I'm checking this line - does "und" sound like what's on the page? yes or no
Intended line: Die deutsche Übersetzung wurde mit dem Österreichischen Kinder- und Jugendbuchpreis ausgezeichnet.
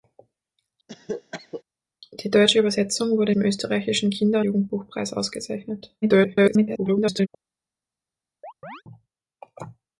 no